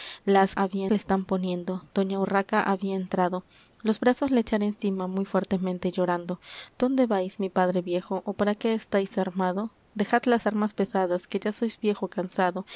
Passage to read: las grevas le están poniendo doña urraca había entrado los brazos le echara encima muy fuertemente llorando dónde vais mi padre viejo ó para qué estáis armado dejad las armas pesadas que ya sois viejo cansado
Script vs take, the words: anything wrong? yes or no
yes